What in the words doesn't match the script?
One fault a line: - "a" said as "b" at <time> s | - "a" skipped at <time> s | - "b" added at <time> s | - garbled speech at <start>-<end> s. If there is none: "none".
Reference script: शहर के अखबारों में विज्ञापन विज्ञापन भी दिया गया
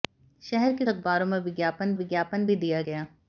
none